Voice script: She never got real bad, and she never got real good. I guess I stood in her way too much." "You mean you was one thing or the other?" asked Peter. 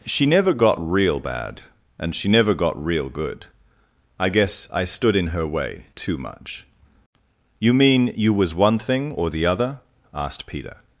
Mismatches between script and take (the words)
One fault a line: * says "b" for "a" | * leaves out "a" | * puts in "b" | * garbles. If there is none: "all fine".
all fine